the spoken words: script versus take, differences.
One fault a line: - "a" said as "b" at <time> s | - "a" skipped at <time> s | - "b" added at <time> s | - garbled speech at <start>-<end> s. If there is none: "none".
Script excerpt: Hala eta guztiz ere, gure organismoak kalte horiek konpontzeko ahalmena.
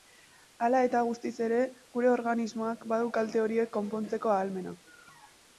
- "badu" added at 2.9 s